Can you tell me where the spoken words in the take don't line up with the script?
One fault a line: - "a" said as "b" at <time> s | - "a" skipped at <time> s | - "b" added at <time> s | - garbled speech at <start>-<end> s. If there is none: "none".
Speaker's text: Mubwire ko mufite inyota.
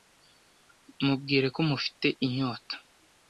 none